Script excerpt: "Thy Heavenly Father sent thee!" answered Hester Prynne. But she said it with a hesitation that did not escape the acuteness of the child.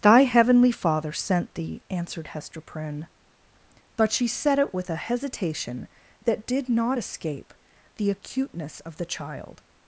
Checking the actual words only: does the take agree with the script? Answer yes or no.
yes